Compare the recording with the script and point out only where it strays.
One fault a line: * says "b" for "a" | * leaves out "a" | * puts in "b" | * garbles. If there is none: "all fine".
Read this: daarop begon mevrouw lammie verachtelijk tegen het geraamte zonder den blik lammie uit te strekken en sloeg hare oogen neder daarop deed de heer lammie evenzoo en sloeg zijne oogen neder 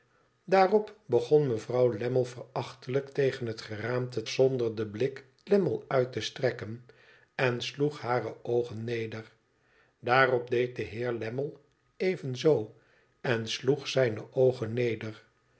all fine